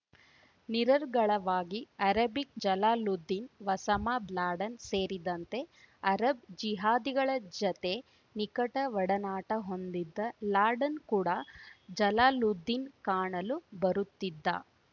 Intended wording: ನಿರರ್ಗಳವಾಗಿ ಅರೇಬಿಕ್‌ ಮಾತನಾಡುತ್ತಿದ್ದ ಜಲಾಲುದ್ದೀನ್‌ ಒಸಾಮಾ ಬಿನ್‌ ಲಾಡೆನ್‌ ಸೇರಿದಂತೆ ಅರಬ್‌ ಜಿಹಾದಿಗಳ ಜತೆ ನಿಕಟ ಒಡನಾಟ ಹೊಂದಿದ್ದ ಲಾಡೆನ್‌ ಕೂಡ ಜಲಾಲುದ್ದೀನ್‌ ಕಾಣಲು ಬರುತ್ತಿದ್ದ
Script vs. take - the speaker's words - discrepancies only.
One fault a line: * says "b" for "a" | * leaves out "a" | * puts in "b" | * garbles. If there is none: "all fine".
* leaves out "ಮಾತನಾಡುತ್ತಿದ್ದ"
* leaves out "ಬಿನ್"